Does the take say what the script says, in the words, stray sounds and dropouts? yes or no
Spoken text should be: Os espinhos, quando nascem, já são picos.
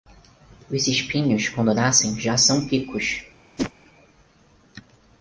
no